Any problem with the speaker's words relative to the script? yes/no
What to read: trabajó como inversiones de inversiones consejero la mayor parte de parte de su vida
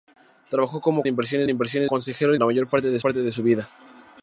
no